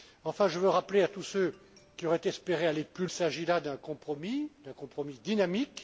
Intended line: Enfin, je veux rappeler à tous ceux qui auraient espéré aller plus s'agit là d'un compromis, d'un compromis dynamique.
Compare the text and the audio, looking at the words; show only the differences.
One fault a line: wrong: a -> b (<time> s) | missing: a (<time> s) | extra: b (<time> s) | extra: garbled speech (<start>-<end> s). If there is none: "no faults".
no faults